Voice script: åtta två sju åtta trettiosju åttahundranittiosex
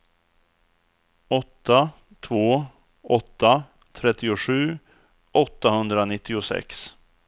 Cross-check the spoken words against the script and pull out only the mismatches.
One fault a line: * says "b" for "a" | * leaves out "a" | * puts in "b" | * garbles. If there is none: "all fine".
* leaves out "sju"